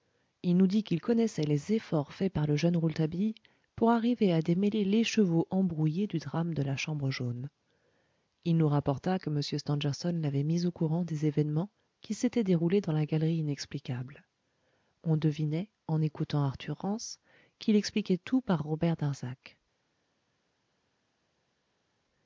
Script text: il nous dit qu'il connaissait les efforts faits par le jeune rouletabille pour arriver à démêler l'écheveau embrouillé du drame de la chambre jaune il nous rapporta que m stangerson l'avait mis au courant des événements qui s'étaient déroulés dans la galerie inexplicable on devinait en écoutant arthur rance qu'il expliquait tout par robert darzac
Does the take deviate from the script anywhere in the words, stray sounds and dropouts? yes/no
no